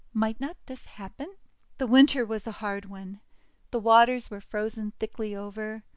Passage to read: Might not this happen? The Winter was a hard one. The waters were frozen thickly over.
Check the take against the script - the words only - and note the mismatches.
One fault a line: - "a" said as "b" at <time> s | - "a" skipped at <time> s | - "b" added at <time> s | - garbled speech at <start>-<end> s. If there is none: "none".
none